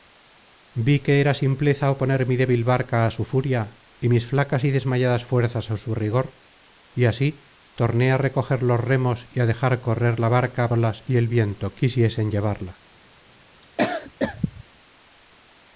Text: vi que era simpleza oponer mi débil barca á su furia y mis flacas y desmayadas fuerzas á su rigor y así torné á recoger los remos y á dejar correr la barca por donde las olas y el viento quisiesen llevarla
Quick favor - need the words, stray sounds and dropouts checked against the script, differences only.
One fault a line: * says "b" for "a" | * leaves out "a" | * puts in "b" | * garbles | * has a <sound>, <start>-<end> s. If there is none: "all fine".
* leaves out "por donde las"
* has a cough, 13.6-14.6 s